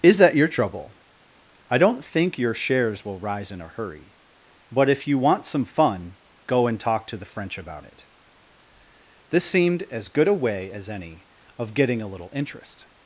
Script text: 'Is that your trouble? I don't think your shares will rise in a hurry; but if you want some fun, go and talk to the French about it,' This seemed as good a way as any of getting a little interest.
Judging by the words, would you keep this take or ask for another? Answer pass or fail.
pass